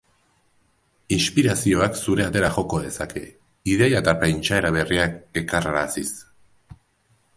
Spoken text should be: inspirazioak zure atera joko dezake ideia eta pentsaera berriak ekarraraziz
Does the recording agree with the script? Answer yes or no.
yes